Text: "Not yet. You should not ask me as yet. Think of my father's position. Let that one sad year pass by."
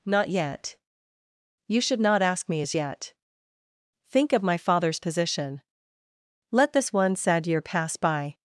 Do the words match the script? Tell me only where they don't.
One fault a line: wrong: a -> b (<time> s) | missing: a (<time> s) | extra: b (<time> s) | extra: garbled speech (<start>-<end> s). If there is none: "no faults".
wrong: that -> this (6.7 s)